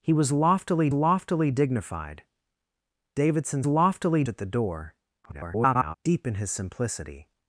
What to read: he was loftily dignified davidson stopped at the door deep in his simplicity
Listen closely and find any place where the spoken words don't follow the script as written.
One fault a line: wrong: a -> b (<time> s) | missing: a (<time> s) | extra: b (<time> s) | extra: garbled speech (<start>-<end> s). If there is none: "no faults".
extra: loftily (0.9 s)
wrong: stopped -> loftily (3.7 s)
extra: garbled speech (5.2-5.9 s)